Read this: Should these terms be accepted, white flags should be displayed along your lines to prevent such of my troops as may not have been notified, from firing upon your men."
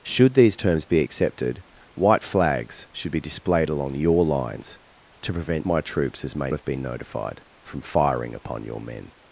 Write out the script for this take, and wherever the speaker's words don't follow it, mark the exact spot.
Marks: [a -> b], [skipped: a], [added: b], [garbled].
Should these terms be accepted, white flags should be displayed along your lines to prevent [skipped: such of] my troops as may [skipped: not] have been notified, from firing upon your men."